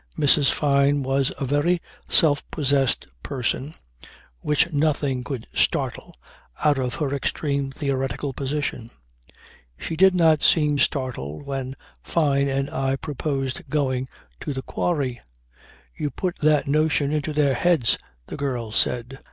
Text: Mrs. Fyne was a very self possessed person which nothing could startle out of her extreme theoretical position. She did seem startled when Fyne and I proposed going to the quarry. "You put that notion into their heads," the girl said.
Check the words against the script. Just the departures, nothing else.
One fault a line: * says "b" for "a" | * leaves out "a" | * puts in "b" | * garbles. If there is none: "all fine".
* puts in "not"